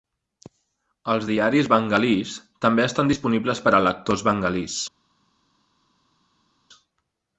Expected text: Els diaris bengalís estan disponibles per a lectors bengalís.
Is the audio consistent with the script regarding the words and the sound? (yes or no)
no